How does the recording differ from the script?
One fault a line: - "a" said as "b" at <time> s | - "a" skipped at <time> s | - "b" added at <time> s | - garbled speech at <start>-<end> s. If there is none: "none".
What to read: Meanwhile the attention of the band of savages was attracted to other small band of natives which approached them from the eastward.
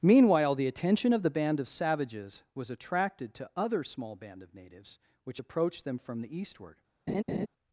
none